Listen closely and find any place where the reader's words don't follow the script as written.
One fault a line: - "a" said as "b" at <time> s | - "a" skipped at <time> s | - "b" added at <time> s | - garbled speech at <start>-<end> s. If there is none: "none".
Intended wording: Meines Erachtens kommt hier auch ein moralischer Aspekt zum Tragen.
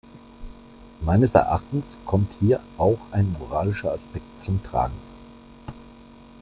none